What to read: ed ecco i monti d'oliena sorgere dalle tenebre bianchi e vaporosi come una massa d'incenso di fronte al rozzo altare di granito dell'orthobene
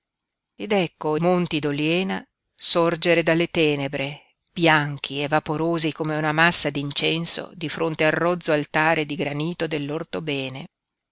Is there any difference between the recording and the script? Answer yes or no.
yes